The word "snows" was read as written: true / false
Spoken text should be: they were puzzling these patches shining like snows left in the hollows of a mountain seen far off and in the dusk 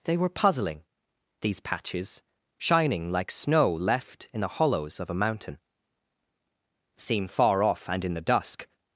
false